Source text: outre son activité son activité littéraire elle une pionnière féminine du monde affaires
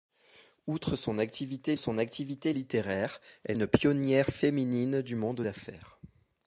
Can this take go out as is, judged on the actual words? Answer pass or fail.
pass